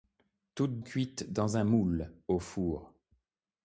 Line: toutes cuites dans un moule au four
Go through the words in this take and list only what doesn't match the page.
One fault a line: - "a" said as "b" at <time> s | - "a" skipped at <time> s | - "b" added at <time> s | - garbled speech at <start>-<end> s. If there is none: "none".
none